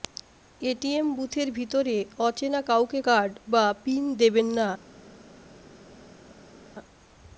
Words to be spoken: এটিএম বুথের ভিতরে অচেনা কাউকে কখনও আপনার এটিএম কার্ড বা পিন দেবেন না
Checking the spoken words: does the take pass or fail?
fail